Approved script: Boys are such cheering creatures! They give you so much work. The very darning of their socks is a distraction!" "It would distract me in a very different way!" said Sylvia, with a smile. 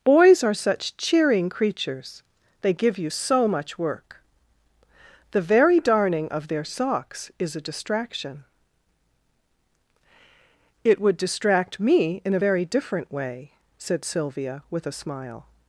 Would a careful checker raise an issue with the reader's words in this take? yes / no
no